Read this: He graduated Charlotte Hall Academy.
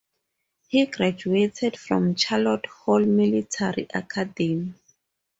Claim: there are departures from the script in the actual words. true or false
true